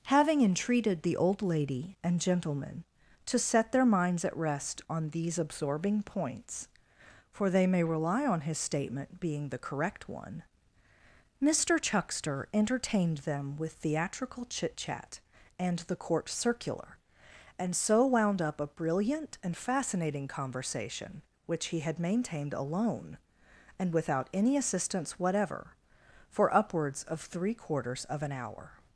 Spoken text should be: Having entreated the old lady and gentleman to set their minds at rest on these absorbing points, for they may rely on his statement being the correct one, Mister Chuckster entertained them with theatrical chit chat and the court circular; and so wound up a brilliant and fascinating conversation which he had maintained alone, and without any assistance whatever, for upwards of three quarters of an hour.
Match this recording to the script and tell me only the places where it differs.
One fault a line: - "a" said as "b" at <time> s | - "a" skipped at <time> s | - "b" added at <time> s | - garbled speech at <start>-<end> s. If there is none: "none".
none